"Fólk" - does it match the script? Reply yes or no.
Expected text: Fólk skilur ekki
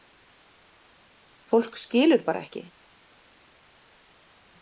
yes